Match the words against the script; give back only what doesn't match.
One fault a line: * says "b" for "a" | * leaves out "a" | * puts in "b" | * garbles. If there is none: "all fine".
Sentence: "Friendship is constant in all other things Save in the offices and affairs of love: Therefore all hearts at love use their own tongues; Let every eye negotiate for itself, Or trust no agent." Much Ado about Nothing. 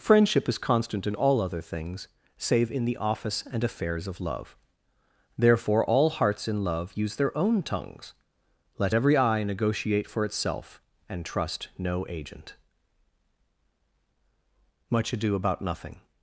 * says "office" for "offices"
* says "in" for "at"
* says "And" for "Or"